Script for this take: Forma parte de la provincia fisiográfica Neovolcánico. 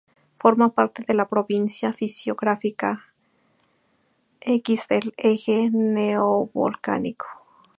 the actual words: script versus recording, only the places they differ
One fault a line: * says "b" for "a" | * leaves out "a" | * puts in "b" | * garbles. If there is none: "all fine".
* puts in "X del Eje"